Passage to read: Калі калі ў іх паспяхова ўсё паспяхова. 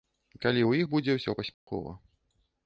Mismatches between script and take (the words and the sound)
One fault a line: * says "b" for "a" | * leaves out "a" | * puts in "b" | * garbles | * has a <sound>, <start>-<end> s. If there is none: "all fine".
* leaves out "калі"
* says "будзе" for "паспяхова"
* has a dropout, 1.5-1.7 s